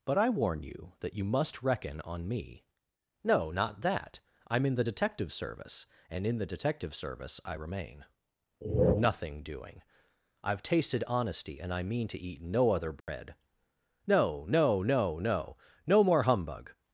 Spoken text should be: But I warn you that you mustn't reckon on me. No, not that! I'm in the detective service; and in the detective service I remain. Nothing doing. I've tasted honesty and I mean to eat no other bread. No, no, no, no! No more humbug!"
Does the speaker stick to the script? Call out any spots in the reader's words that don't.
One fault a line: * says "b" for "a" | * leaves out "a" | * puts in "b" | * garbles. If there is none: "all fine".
* says "must" for "mustn't"